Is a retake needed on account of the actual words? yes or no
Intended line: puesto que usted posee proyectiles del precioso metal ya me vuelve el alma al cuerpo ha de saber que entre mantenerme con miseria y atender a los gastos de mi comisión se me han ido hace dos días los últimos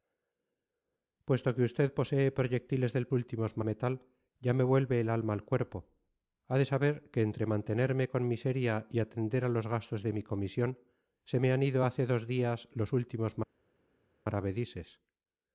yes